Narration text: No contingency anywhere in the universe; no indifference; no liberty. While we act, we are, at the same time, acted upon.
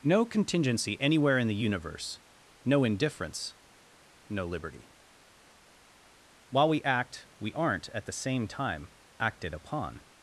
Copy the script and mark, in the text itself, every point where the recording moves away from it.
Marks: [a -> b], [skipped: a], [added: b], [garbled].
No contingency anywhere in the universe; no indifference; no liberty. While we act, we [are, -> aren't] at the same time, acted upon.